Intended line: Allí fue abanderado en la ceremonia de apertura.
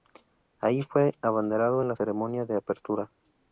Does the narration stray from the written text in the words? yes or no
no